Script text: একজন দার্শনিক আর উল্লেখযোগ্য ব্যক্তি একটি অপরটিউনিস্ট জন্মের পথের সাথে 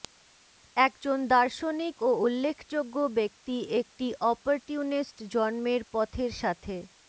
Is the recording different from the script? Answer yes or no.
yes